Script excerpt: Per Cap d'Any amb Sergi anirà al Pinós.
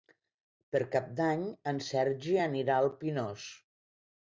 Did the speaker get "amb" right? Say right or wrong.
wrong